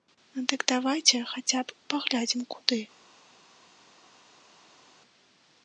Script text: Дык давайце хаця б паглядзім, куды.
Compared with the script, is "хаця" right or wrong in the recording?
right